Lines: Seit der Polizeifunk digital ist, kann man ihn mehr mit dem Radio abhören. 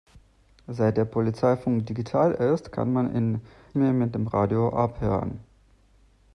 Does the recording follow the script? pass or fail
pass